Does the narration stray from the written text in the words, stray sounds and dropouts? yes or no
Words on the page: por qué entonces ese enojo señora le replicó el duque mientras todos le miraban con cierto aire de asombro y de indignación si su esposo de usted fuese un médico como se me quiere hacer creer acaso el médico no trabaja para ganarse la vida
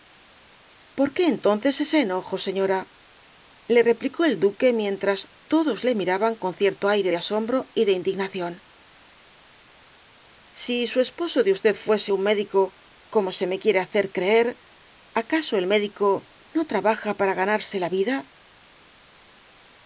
no